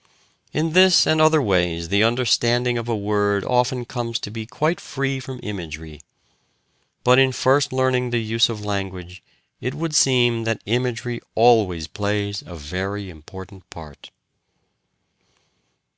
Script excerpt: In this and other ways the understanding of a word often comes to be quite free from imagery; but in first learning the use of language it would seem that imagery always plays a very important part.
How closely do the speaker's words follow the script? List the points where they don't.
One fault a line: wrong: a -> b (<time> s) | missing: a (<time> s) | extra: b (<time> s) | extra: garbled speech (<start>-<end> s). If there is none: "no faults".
no faults